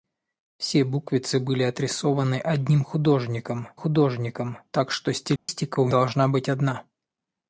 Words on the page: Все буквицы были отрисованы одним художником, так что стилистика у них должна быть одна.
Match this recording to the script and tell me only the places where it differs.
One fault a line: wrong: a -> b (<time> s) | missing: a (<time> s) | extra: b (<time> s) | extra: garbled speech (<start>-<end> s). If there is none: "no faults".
extra: художником (3.7 s)
missing: них (5.9 s)